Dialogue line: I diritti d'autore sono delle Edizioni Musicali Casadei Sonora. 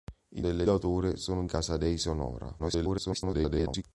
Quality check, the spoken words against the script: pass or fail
fail